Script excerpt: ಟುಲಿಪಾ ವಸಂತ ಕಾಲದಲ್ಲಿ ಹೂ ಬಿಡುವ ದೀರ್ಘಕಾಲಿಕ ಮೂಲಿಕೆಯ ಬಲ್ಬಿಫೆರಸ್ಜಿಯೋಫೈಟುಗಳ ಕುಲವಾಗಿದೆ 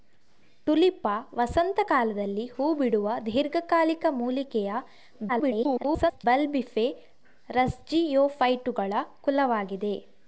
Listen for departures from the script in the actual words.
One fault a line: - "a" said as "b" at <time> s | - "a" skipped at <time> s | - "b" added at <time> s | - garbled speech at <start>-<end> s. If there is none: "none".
- garbled speech at 5.3-6.2 s